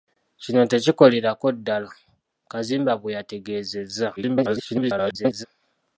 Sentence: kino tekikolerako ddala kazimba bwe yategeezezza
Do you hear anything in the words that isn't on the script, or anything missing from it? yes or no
yes